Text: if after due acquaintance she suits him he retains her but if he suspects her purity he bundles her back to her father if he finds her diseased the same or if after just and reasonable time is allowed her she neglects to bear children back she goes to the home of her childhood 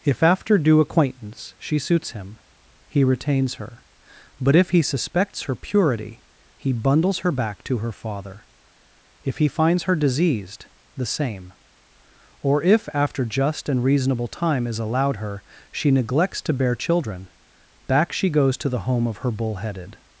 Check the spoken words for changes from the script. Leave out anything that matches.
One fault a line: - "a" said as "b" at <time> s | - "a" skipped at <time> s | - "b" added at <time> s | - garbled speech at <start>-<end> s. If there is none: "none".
- "childhood" said as "bullheaded" at 19.3 s